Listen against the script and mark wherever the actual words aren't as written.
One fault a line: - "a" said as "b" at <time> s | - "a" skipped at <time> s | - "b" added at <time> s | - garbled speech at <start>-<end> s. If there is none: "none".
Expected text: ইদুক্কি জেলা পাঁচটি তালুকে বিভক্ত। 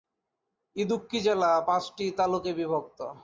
none